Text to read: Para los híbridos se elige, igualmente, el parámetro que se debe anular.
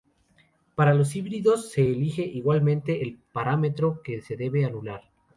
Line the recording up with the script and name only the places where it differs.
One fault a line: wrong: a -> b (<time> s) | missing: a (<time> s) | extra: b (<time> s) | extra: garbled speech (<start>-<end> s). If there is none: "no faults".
no faults